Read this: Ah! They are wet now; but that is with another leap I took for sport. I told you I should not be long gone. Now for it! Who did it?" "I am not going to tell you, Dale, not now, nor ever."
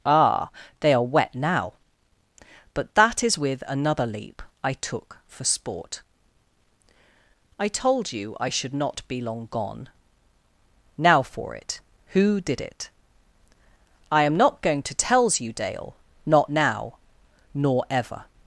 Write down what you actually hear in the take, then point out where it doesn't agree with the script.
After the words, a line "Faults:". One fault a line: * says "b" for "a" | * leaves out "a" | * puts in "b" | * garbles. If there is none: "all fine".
Ah! They are wet now; but that is with another leap I took for sport. I told you I should not be long gone. Now for it! Who did it?" "I am not going to tells you, Dale, not now, nor ever."
Faults:
* says "tells" for "tell"